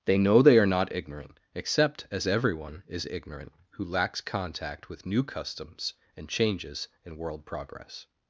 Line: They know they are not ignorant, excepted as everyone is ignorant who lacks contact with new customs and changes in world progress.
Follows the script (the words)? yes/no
no